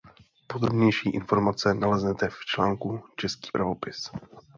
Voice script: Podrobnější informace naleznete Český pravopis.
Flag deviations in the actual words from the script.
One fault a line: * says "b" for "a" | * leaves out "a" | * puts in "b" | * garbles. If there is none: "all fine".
* puts in "v článku"